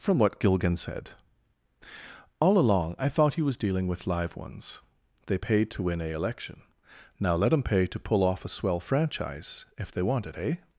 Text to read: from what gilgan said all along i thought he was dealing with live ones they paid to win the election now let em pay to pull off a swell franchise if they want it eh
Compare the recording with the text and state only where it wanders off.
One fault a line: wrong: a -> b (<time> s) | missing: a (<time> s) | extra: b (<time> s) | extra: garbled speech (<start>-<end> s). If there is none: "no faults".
wrong: the -> a (6.0 s)